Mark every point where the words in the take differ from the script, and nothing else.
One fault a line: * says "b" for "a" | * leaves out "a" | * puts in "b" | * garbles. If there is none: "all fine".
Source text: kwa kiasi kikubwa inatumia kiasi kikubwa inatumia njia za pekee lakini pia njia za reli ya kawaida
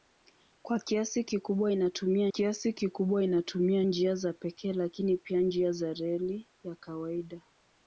all fine